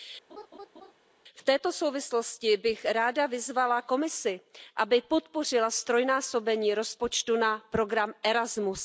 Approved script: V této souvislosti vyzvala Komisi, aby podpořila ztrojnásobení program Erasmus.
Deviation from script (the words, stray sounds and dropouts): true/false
true